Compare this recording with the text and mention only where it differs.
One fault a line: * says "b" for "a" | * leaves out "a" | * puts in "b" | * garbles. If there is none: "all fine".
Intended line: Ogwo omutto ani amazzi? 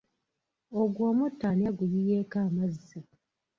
* puts in "aguyiyeeko"